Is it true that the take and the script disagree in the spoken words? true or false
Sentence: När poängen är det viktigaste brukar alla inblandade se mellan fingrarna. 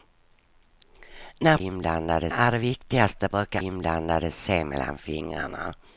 true